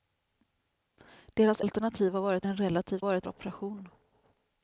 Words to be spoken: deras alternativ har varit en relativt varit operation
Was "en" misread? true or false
false